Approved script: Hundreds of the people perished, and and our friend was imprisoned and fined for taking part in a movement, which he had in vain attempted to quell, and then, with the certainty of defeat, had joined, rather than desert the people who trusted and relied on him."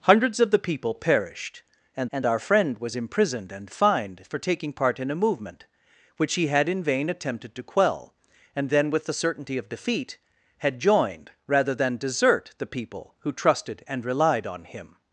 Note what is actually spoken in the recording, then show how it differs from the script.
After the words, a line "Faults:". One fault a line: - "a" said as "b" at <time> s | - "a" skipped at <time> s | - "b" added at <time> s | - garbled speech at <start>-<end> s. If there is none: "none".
Hundreds of the people perished, and and our friend was imprisoned and fined for taking part in a movement, which he had in vain attempted to quell, and then, with the certainty of defeat, had joined, rather than desert the people who trusted and relied on him."
Faults:
none